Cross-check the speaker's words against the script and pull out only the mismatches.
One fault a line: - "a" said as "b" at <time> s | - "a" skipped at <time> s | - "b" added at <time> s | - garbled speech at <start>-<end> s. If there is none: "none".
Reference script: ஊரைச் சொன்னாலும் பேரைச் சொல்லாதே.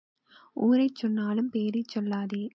none